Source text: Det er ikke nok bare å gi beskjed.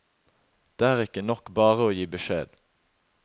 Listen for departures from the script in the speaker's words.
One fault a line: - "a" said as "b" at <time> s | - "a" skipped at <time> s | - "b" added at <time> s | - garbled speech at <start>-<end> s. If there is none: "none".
none